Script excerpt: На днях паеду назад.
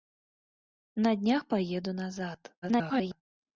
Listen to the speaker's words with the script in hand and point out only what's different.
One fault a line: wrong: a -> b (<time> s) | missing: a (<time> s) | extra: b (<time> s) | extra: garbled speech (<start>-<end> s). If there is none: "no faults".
extra: garbled speech (2.6-3.2 s)